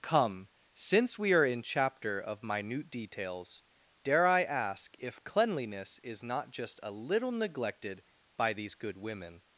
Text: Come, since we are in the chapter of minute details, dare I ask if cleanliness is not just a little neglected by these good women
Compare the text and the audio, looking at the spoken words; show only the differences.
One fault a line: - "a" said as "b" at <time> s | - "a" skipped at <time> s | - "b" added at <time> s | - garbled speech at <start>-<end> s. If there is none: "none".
- "the" skipped at 1.6 s